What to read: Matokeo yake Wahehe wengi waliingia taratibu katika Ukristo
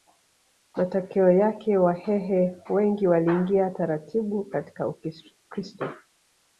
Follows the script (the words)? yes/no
yes